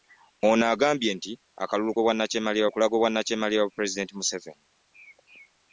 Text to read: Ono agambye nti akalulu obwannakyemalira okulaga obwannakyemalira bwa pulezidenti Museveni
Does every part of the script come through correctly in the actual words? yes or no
yes